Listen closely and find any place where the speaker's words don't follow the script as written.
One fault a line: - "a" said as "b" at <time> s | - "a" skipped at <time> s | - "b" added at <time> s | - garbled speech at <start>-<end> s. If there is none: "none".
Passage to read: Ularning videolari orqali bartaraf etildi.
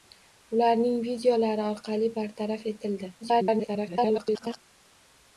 - garbled speech at 3.2-4.6 s